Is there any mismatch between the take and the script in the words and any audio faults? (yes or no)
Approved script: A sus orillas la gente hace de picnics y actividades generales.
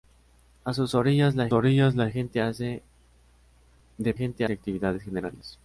yes